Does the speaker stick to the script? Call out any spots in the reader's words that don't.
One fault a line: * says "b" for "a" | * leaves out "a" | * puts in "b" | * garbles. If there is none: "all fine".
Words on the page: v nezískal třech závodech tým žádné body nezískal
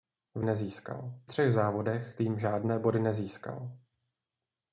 all fine